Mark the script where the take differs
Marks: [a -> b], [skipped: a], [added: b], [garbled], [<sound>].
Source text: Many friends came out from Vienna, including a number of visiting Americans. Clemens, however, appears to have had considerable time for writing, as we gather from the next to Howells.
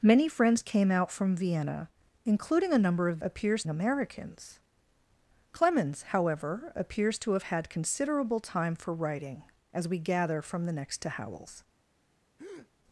Many friends came out from Vienna, including a number of [visiting -> appears] Americans. Clemens, however, appears to have had considerable time for writing, as we gather from the next to Howells. [breath]